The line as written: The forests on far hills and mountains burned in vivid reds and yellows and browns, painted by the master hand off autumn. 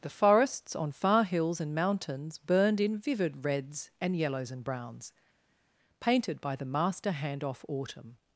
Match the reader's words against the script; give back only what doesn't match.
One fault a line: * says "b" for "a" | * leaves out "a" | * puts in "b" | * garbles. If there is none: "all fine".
all fine